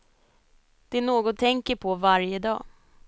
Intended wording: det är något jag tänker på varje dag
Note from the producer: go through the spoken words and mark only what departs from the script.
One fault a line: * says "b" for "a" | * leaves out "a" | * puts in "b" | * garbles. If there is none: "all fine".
* leaves out "jag"